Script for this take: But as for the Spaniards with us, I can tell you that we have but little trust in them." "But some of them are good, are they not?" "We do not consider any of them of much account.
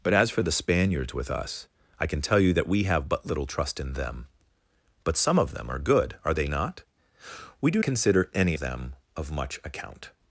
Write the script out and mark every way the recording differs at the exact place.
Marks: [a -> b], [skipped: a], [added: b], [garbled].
But as for the Spaniards with us, I can tell you that we have but little trust in them." "But some of them are good, are they not?" "We do [skipped: not] consider any [skipped: of] them of much account.